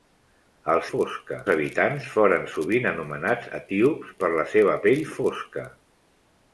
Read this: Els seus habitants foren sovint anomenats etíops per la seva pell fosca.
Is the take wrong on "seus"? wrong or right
wrong